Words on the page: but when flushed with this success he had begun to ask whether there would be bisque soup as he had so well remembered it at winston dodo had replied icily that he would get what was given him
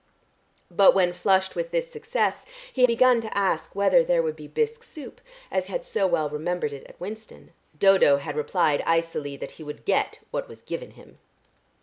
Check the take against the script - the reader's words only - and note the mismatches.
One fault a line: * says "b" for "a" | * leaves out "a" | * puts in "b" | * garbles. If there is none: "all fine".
* leaves out "had"
* leaves out "he"